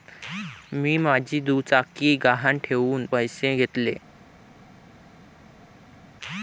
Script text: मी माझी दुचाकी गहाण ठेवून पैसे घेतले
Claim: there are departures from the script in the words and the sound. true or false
false